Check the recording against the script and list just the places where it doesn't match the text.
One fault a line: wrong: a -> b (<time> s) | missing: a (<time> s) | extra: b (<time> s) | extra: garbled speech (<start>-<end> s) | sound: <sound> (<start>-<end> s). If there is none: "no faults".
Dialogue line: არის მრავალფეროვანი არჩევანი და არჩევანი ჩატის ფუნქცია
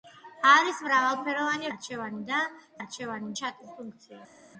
no faults